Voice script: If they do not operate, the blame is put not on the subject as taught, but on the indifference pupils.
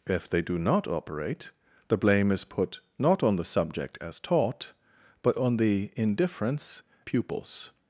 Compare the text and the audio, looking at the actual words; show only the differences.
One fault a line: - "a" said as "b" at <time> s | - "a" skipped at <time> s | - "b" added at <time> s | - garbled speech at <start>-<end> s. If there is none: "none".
none